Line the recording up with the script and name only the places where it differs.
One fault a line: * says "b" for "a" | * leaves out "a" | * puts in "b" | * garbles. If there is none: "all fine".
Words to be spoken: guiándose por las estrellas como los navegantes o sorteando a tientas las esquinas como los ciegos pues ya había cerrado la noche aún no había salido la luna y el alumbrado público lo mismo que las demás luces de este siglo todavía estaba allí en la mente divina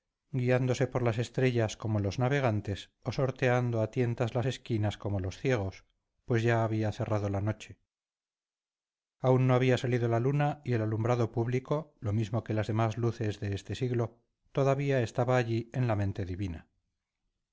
all fine